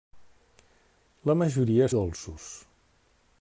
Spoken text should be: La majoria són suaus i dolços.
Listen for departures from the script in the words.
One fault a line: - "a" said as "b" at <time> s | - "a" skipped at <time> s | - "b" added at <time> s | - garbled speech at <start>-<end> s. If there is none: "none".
- "són suaus i" skipped at 1.9 s